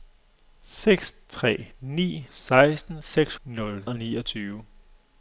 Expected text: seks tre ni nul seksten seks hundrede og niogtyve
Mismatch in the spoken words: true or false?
true